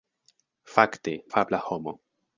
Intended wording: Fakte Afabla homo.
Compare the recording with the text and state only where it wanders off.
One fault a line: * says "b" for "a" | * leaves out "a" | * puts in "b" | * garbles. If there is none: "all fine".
all fine